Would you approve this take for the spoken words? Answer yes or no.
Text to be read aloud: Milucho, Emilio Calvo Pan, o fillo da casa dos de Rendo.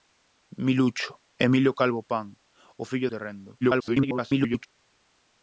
no